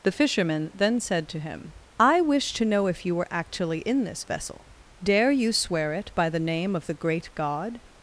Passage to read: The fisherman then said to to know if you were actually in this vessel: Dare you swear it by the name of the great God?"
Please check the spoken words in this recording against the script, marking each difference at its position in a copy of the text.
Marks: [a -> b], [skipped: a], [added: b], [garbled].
The fisherman then said to [added: him I wish] to know if you were actually in this vessel: Dare you swear it by the name of the great God?"